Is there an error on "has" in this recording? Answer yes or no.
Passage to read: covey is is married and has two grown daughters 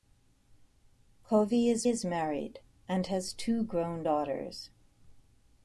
no